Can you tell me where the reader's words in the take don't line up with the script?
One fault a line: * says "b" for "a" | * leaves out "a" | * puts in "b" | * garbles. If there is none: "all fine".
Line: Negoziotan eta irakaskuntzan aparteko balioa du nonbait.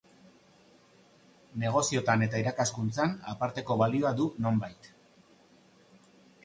all fine